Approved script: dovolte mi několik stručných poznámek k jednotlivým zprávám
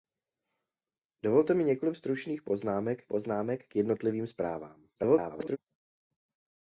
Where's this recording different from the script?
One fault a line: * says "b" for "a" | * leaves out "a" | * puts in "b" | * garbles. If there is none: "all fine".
* puts in "poznámek"
* garbles